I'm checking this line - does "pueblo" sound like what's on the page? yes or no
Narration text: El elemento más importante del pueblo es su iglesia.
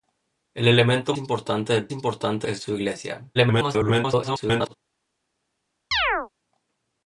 no